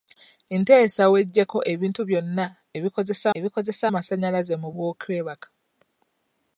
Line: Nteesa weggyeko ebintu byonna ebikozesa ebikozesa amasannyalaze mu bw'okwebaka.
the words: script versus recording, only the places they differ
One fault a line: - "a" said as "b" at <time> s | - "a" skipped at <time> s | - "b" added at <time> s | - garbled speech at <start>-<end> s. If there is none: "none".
none